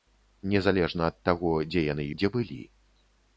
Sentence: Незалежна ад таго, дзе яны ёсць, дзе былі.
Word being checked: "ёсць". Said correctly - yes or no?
no